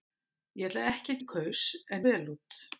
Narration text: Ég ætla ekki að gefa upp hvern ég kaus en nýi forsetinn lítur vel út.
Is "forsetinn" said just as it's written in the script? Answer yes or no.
no